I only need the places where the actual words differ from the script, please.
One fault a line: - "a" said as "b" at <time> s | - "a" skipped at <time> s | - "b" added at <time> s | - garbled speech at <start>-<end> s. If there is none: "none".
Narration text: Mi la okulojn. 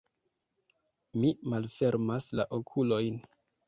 - "malfermas" added at 1.5 s